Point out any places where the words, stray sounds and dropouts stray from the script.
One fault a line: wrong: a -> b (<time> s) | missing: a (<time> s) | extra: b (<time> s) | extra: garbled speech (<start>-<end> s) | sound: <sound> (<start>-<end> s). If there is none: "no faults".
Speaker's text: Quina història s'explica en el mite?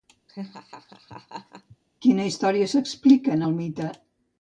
sound: laugh (0.3-1.8 s)